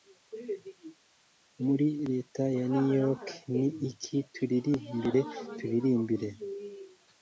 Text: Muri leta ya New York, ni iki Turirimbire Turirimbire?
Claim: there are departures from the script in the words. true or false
false